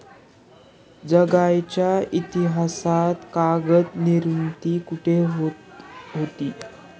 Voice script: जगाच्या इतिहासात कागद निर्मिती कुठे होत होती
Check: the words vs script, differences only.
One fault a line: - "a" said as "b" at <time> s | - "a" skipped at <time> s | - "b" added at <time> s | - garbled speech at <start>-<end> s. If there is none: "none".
none